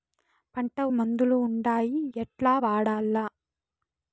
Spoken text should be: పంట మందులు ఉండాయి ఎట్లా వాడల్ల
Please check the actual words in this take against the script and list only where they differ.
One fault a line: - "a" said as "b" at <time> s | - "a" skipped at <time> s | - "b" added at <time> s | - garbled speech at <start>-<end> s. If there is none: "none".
none